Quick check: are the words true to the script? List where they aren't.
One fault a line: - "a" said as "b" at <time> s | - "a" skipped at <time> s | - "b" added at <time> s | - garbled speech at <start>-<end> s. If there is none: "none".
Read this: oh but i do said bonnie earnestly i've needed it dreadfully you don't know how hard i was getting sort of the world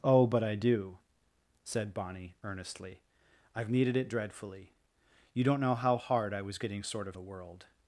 none